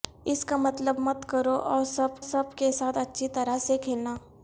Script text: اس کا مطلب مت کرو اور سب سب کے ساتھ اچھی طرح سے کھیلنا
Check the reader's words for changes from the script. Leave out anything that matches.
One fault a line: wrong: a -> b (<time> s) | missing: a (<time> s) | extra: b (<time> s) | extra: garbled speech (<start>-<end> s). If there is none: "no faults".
no faults